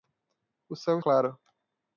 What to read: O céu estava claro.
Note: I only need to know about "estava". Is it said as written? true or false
false